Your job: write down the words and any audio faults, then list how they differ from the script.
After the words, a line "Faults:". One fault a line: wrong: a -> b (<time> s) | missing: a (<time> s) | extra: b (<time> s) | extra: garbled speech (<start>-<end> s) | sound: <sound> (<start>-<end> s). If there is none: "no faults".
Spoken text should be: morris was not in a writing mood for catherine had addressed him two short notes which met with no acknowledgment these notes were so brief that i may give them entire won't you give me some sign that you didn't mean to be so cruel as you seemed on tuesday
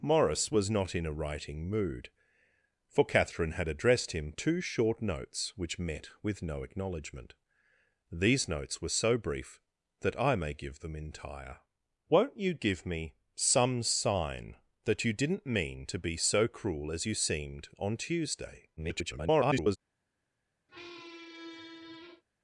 morris was not in a writing mood for catherine had addressed him two short notes which met with no acknowledgment these notes were so brief that i may give them entire won't you give me some sign that you didn't mean to be so cruel as you seemed on tuesday [garbled]
Faults:
extra: garbled speech (18.8-19.8 s)
sound: squeak (20.7-22.2 s)